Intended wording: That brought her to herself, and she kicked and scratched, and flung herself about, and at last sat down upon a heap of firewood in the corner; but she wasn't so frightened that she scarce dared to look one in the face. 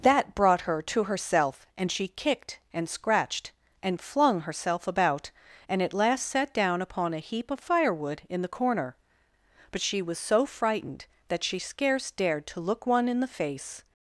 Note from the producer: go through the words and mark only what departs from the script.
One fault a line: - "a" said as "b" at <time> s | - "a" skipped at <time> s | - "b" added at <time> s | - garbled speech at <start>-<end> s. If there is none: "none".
- "wasn't" said as "was" at 10.0 s